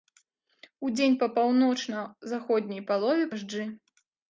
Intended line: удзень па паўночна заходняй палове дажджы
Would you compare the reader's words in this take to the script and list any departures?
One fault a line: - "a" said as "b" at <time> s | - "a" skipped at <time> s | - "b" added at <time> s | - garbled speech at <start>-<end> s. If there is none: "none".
none